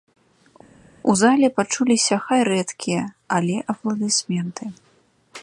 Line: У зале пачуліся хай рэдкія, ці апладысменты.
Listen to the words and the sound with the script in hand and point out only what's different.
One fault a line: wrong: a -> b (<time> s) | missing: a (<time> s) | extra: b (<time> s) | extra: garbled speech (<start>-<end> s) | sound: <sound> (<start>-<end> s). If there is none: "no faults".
wrong: ці -> але (3.4 s)